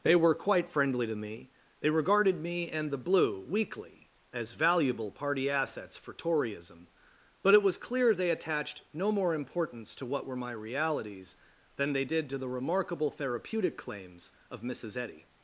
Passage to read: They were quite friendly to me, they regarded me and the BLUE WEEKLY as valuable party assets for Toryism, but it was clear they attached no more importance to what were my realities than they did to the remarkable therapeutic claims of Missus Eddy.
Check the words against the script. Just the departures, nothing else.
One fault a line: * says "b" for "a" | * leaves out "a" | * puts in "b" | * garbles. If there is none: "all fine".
all fine